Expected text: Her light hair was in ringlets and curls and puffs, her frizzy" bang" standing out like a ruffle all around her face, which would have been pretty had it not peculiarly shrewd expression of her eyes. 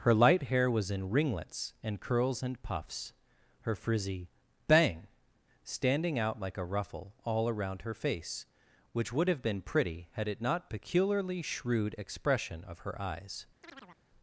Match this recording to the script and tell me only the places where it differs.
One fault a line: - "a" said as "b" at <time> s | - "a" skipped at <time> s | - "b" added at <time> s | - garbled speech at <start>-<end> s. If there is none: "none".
none